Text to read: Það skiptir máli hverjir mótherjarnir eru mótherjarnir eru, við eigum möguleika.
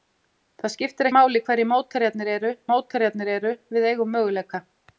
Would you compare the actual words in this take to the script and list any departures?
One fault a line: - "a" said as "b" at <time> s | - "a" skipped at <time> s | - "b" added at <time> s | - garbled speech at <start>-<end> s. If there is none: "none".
none